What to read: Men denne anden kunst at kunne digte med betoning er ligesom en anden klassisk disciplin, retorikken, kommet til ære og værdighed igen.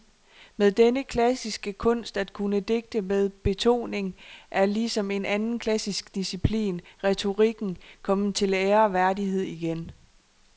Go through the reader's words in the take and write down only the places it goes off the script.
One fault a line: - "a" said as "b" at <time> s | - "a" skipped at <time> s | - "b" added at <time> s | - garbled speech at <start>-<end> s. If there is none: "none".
- "anden" said as "klassiske" at 1.0 s